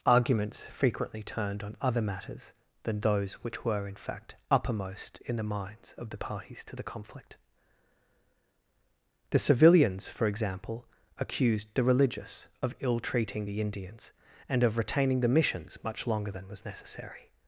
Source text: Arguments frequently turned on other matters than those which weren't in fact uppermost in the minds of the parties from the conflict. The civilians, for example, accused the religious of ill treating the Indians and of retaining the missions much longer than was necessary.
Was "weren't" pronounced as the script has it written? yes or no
no